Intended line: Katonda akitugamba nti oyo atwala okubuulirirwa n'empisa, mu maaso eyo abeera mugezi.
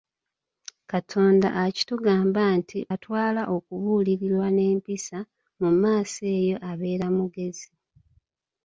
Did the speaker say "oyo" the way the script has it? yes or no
no